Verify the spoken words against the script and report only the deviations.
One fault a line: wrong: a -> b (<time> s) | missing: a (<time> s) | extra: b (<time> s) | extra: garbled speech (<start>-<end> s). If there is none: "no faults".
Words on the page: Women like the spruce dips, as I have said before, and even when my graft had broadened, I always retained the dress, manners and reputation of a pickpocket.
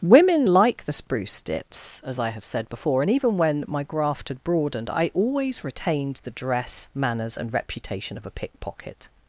no faults